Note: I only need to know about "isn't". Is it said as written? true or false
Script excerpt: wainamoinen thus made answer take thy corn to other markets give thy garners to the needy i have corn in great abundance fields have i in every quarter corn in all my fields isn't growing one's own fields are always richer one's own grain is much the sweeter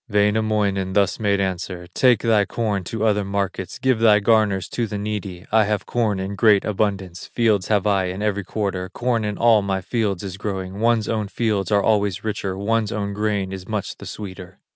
false